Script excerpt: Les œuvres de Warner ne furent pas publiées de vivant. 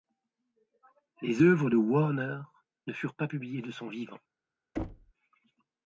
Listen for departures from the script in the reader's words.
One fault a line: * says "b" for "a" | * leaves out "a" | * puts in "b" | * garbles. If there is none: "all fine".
* puts in "son"